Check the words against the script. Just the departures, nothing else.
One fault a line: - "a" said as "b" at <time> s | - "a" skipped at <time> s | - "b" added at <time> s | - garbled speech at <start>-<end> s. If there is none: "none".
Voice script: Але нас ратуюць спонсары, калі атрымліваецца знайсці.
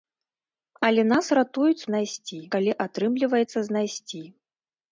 - "спонсары" said as "знайсці" at 1.9 s